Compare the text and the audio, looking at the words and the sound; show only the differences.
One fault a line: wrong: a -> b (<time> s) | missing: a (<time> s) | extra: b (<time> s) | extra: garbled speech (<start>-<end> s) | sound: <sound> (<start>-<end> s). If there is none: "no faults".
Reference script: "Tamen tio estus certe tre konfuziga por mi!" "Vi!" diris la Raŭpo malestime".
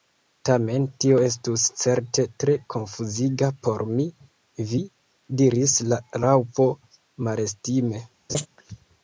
sound: laugh (8.3-8.5 s)